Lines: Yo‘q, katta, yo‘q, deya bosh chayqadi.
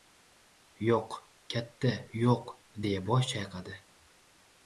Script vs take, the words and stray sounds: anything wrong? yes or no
no